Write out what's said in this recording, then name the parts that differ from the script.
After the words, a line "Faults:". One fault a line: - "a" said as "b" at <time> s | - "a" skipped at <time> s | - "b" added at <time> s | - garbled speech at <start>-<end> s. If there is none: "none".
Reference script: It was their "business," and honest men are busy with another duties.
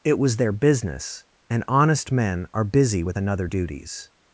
It was their "business," and honest men are busy with another duties.
Faults:
none